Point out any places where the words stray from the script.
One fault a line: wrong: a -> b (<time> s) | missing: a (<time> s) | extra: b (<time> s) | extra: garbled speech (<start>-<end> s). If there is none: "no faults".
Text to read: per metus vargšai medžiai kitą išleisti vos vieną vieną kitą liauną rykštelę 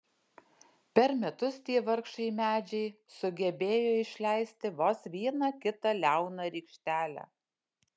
extra: tie (1.7 s)
wrong: kitą -> sugebėjo (3.2 s)
missing: vieną (5.5 s)